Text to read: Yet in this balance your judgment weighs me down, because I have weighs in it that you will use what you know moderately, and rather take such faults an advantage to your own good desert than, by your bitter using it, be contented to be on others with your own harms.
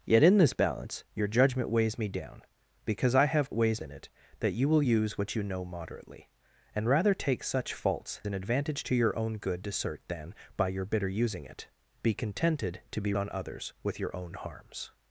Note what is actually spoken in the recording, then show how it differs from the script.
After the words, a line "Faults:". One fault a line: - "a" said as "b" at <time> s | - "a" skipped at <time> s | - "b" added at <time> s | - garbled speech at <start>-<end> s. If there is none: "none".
Yet in this balance your judgment weighs me down, because I have weighs in it that you will use what you know moderately, and rather take such faults an advantage to your own good desert than, by your bitter using it, be contented to be on others with your own harms.
Faults:
none